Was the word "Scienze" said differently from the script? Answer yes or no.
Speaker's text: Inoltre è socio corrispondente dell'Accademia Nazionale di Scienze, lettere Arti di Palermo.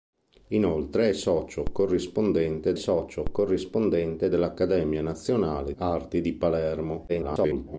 yes